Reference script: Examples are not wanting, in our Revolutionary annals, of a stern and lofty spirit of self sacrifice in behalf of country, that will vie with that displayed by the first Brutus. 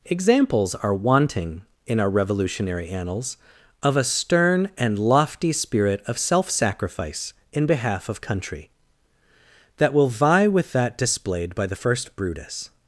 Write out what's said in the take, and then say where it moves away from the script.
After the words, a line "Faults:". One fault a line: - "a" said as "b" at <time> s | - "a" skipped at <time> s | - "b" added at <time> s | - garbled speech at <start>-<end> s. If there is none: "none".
Examples are wanting, in our Revolutionary annals, of a stern and lofty spirit of self sacrifice in behalf of country, that will vie with that displayed by the first Brutus.
Faults:
- "not" skipped at 0.9 s